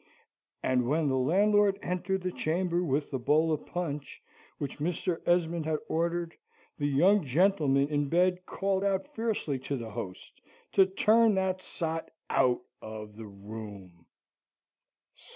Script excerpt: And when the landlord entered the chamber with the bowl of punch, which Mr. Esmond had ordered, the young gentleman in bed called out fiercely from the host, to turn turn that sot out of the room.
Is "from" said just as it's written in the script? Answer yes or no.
no